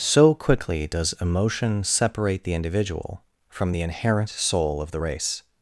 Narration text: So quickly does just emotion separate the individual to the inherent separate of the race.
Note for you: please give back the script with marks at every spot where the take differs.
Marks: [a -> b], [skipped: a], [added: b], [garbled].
So quickly does [skipped: just] emotion separate the individual [to -> from] the inherent [separate -> soul] of the race.